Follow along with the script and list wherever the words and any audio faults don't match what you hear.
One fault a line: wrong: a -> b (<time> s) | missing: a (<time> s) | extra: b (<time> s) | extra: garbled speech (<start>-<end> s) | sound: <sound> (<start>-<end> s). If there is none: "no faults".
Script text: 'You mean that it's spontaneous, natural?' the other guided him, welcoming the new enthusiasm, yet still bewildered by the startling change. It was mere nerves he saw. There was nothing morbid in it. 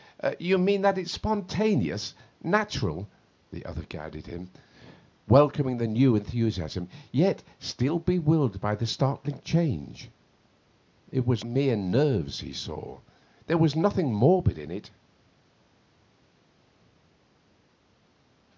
no faults